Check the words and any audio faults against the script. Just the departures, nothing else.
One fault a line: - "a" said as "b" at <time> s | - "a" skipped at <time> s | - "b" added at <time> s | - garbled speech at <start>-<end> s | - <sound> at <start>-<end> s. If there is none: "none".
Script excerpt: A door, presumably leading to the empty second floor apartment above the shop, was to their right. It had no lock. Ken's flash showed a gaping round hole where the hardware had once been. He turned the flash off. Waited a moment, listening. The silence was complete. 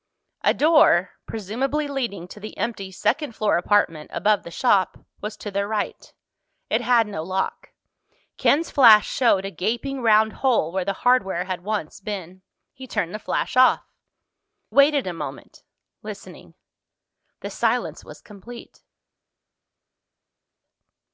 none